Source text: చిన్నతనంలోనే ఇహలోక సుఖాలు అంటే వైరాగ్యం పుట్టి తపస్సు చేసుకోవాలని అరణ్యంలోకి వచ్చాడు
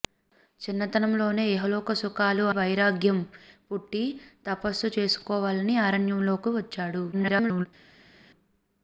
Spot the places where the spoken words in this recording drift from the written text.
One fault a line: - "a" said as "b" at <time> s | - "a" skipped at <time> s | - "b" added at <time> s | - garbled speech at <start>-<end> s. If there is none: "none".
- "అంటే" skipped at 2.5 s
- garbled speech at 7.1-7.7 s